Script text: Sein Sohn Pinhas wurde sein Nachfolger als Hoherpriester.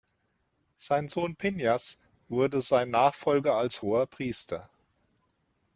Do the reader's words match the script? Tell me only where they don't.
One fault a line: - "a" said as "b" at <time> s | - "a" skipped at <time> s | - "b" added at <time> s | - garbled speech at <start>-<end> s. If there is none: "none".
none